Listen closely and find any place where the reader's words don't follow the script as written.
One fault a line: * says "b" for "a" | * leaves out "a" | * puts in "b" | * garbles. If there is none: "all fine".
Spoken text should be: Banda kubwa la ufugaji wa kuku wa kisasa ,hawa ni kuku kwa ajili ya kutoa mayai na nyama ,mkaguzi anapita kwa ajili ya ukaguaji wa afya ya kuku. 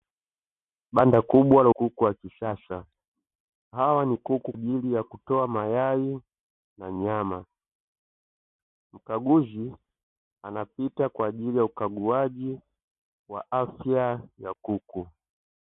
* leaves out "ufugaji wa"
* leaves out "kwa"